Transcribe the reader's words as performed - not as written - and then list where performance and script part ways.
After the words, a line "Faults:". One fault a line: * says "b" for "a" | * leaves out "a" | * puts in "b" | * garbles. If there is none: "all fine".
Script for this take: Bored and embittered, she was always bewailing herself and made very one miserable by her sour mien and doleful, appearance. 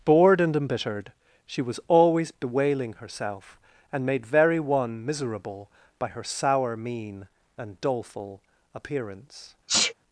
Bored and embittered, she was always bewailing herself and made very one miserable by her sour mien and doleful, appearance.
Faults:
all fine